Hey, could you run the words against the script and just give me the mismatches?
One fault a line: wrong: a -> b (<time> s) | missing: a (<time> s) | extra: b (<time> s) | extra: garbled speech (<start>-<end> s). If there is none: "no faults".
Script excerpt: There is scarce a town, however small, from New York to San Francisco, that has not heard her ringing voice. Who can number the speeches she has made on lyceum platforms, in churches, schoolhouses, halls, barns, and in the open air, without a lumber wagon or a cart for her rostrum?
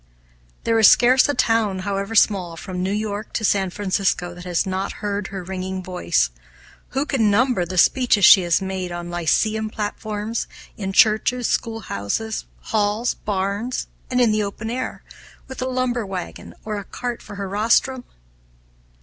wrong: without -> with (15.5 s)